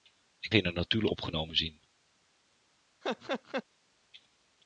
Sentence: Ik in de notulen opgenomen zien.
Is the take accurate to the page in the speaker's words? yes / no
yes